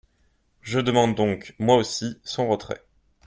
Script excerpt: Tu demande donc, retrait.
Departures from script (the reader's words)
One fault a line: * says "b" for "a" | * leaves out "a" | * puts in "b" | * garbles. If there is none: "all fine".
* says "Je" for "Tu"
* puts in "moi aussi son"